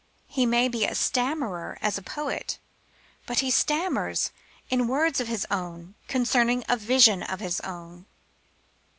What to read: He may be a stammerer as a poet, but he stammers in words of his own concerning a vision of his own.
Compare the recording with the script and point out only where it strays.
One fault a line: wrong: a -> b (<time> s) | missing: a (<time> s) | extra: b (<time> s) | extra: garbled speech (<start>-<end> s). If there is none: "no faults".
no faults